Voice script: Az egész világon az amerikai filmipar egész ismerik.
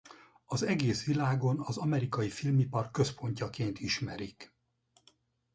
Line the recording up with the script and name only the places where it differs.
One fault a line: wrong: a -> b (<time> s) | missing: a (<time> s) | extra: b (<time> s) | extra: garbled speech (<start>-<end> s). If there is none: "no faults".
wrong: egész -> központjaként (2.9 s)